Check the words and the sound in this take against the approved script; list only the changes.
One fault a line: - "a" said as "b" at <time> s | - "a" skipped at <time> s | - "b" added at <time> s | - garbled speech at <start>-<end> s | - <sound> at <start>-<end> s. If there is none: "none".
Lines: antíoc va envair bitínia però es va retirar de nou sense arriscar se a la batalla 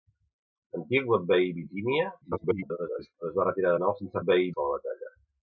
- garbled speech at 2.2-3.1 s
- "arriscar" said as "envair" at 4.2 s